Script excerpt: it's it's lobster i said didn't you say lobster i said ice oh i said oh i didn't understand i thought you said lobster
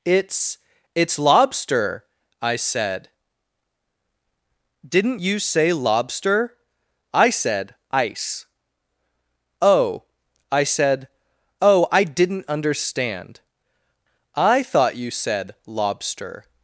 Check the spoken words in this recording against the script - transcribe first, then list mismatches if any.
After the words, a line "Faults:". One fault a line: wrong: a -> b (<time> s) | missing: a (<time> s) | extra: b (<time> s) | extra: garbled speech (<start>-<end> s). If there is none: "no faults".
it's it's lobster i said didn't you say lobster i said ice oh i said oh i didn't understand i thought you said lobster
Faults:
no faults